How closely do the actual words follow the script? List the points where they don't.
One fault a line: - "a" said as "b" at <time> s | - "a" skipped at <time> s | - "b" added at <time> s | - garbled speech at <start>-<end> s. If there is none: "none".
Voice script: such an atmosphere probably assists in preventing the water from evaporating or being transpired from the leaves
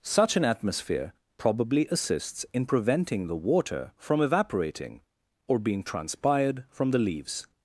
none